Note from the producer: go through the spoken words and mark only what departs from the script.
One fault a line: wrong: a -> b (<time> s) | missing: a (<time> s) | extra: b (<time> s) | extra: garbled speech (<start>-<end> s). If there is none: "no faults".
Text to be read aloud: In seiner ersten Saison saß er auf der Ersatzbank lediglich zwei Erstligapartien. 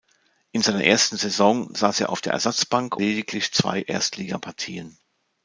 no faults